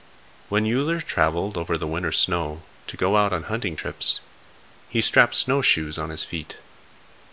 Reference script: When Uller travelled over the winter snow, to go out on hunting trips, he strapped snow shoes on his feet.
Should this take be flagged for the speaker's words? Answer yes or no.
no